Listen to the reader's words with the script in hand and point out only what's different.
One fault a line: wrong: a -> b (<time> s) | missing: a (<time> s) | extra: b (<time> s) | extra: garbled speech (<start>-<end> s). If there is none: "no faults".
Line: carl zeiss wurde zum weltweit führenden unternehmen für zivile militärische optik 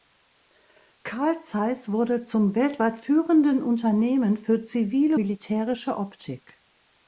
no faults